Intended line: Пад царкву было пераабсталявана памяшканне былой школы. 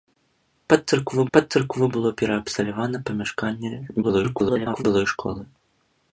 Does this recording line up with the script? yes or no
no